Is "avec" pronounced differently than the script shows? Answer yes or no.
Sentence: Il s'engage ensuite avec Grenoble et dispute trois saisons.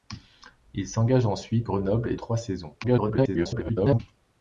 yes